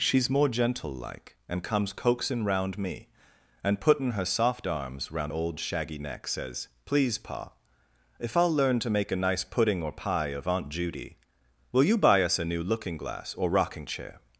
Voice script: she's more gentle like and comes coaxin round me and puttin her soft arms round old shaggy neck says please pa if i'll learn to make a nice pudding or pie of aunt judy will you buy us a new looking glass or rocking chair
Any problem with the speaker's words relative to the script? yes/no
no